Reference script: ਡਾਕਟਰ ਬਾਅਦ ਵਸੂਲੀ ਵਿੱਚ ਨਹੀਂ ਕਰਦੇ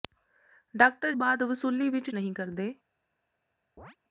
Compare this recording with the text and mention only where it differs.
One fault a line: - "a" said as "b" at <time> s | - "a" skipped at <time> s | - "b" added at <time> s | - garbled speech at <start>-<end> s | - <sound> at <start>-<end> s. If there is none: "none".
- chirp at 3.8-4.0 s